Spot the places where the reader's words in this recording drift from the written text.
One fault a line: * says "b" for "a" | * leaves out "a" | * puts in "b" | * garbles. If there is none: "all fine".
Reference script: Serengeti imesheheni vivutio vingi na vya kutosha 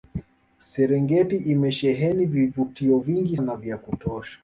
all fine